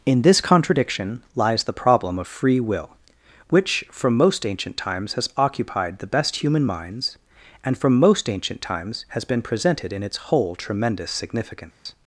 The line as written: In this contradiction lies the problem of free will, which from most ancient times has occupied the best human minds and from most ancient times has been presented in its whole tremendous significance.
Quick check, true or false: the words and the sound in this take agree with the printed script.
false